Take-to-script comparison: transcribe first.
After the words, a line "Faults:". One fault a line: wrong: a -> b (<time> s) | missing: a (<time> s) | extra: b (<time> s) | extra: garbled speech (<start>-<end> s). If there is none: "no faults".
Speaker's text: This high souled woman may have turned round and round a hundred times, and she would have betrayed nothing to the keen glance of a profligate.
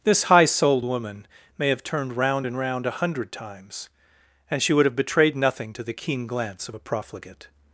This high souled woman may have turned round and round a hundred times, and she would have betrayed nothing to the keen glance of a profligate.
Faults:
no faults